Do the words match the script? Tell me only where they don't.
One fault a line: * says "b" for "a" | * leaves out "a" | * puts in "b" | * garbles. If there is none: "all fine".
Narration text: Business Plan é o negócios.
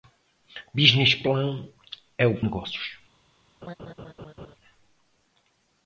all fine